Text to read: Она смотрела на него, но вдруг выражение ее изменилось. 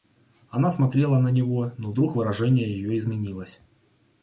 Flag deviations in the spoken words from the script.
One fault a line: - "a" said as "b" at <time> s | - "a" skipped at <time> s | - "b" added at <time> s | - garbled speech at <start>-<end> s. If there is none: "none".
none